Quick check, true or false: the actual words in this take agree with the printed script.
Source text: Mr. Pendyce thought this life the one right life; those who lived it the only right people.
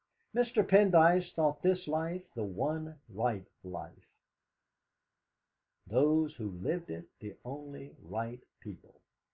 true